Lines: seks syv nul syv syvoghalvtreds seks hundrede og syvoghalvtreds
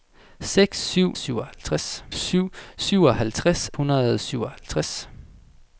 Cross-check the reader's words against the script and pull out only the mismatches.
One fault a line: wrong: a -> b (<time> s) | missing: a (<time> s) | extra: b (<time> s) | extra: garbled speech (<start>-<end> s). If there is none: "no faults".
wrong: nul -> syvoghalvtreds (1.1 s)
missing: seks (3.7 s)